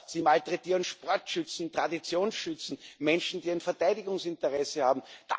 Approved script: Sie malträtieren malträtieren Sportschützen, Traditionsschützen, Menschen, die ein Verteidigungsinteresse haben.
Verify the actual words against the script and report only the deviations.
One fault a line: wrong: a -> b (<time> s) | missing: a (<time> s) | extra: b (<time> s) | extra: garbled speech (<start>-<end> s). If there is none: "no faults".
missing: malträtieren (0.8 s)